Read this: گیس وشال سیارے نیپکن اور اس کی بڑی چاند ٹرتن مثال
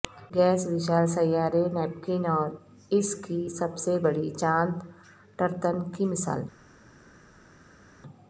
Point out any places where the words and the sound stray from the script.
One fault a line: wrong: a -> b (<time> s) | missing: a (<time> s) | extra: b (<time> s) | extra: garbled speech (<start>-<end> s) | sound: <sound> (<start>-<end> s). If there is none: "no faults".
extra: سب سے (3.5 s)
extra: کی (5.9 s)